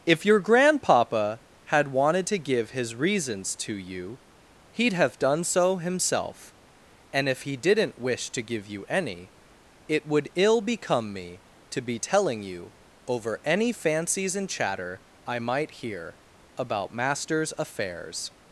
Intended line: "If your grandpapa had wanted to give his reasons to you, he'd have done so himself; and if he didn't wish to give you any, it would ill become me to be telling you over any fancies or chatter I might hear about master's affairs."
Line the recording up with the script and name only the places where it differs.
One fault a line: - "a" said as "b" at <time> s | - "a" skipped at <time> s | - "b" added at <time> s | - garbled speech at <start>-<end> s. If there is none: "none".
- "or" said as "and" at 14.4 s